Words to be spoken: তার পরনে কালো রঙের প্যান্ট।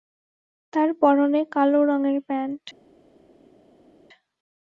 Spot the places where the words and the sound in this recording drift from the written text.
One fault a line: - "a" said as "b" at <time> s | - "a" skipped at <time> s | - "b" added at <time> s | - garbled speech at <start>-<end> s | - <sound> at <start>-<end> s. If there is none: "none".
none